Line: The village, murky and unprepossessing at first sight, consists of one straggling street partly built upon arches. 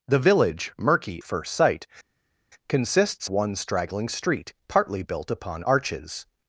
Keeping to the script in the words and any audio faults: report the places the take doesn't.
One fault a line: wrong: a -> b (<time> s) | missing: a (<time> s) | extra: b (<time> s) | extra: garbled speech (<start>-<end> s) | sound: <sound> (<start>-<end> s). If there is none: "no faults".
missing: and unprepossessing at (1.2 s)
missing: of (3.3 s)